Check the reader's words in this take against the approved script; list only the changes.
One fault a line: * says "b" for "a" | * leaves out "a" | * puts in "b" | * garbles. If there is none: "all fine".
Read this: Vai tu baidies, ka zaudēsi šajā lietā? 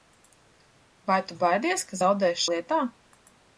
* leaves out "šajā"